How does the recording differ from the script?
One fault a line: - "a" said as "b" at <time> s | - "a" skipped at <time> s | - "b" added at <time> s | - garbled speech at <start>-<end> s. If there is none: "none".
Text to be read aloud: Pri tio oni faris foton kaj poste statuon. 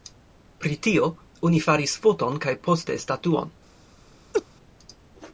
none